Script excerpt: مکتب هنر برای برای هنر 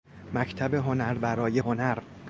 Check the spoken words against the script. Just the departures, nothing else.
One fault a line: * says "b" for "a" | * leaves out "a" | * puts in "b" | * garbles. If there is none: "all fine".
* leaves out "برای"